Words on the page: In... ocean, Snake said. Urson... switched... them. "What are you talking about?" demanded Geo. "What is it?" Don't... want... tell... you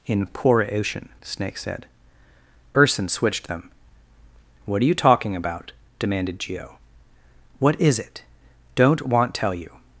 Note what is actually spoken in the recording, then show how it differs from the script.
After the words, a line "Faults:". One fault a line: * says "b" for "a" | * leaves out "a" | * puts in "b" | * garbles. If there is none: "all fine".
In... poor ocean, Snake said. Urson... switched... them. "What are you talking about?" demanded Geo. "What is it?" Don't... want... tell... you
Faults:
* puts in "poor"